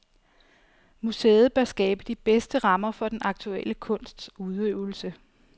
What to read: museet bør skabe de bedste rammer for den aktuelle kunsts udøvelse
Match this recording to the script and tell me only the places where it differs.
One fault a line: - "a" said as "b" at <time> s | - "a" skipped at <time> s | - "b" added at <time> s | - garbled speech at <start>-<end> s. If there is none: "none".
none